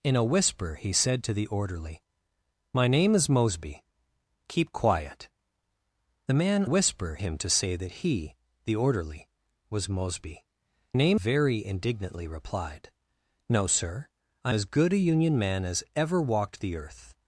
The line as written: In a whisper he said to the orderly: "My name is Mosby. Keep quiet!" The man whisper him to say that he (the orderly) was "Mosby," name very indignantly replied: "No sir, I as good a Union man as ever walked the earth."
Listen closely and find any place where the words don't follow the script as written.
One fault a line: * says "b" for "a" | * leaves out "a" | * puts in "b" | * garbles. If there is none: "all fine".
all fine